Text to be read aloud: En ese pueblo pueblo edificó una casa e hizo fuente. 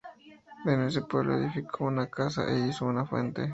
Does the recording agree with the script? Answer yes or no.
no